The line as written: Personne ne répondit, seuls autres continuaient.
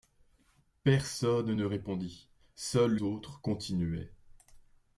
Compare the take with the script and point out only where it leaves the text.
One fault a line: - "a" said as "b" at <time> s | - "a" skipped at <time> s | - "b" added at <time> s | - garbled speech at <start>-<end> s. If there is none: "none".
none